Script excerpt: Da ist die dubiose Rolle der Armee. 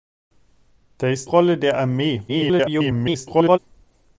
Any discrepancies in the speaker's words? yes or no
yes